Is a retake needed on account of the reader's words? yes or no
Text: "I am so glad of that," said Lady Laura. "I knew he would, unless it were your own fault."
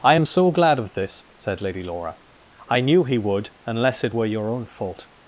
yes